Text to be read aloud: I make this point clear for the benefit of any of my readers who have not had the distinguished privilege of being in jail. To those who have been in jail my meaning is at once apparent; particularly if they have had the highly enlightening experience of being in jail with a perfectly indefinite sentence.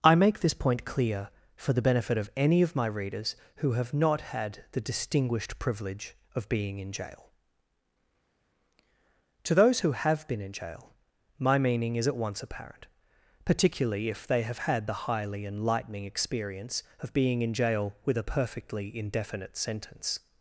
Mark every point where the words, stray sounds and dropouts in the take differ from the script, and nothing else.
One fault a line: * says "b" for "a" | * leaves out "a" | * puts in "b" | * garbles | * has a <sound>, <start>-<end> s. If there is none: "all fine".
all fine